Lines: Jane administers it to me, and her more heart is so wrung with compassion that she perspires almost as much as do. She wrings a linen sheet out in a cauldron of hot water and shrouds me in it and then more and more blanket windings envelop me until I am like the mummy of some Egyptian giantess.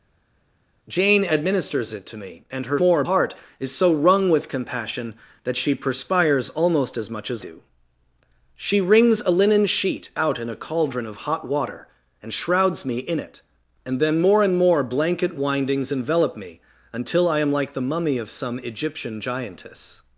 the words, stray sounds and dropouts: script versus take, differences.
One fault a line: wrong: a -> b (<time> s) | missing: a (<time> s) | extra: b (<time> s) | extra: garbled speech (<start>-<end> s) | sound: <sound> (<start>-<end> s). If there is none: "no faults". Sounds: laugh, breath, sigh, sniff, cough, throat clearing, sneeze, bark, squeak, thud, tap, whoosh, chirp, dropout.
no faults